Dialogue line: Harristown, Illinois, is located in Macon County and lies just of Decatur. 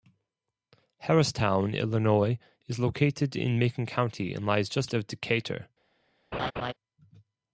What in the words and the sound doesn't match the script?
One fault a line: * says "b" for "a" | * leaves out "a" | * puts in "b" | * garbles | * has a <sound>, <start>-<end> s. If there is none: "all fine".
* has a laugh, 6.3-6.7 s